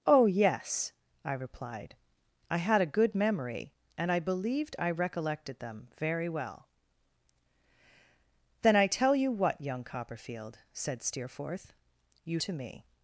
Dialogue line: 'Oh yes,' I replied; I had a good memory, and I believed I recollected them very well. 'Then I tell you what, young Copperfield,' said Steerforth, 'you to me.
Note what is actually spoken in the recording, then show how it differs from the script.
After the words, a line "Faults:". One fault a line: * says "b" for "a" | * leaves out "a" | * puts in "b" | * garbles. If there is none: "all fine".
'Oh yes,' I replied; I had a good memory, and I believed I recollected them very well. 'Then I tell you what, young Copperfield,' said Steerforth, 'you to me.
Faults:
all fine